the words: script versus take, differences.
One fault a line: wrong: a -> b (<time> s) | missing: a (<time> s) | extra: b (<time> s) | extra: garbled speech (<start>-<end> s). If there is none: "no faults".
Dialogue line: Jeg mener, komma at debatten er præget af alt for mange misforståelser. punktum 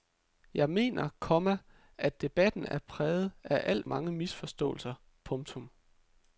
missing: for (3.9 s)